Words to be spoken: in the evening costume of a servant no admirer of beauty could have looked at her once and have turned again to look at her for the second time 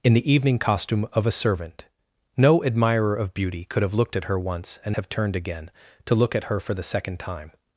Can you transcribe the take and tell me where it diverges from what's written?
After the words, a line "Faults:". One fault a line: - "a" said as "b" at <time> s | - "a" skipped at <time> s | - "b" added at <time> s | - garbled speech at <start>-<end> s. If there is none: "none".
in the evening costume of a servant no admirer of beauty could have looked at her once and have turned again to look at her for the second time
Faults:
none